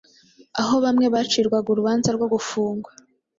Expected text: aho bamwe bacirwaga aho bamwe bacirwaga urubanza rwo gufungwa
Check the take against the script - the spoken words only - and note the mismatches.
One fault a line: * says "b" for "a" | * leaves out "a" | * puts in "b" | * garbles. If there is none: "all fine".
* leaves out "aho bamwe bacirwaga"